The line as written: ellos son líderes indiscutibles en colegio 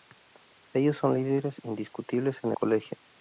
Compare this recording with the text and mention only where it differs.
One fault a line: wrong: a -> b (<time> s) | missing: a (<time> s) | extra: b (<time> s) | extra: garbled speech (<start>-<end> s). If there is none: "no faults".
no faults